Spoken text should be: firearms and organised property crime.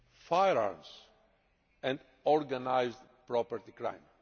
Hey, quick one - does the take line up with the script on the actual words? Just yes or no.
yes